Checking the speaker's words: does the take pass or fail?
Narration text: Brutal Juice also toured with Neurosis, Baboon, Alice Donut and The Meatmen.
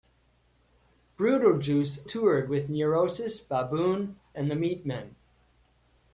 fail